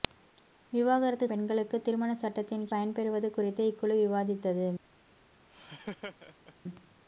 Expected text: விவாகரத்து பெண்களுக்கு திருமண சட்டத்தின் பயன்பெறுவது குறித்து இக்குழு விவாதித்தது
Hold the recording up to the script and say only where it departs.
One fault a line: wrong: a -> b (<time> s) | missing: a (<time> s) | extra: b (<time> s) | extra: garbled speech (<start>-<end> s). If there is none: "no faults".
no faults